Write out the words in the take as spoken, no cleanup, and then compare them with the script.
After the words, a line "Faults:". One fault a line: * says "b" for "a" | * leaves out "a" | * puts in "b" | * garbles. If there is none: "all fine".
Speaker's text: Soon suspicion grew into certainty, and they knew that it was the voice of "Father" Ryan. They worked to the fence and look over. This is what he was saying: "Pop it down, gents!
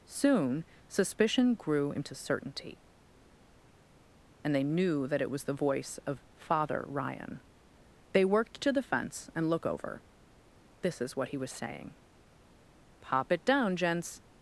Soon suspicion grew into certainty, and they knew that it was the voice of "Father" Ryan. They worked to the fence and look over. This is what he was saying: "Pop it down, gents!
Faults:
all fine